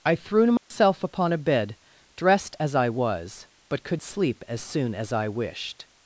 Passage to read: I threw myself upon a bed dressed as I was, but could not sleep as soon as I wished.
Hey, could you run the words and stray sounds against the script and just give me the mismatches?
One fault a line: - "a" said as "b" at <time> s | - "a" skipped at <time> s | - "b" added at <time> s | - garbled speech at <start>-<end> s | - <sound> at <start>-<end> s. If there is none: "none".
- dropout at 0.6-0.7 s
- "not" skipped at 4.0 s